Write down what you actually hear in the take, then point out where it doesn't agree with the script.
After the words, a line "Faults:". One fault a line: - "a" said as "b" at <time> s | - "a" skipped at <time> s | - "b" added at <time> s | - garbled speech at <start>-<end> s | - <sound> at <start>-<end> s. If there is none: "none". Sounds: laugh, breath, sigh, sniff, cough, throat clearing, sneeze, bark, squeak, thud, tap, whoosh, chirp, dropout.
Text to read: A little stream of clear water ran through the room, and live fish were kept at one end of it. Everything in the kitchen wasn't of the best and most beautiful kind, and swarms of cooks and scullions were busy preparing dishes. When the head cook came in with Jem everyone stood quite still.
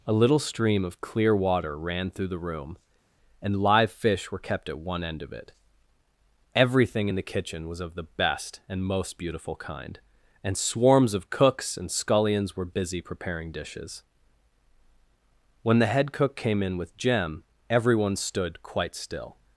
A little stream of clear water ran through the room, and live fish were kept at one end of it. Everything in the kitchen was of the best and most beautiful kind, and swarms of cooks and scullions were busy preparing dishes. When the head cook came in with Jem everyone stood quite still.
Faults:
- "wasn't" said as "was" at 7.7 s